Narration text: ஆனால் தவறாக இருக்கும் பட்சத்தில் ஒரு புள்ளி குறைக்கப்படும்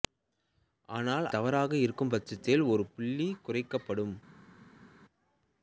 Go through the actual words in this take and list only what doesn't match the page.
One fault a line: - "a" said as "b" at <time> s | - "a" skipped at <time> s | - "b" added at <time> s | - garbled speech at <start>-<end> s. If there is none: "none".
none